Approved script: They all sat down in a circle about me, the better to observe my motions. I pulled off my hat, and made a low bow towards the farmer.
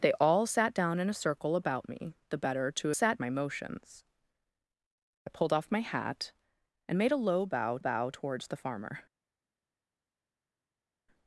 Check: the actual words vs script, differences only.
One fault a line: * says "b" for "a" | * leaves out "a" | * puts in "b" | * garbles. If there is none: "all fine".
* says "sat" for "observe"
* puts in "bow"